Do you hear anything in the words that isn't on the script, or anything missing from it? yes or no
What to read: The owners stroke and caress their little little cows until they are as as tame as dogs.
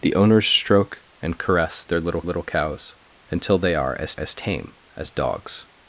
no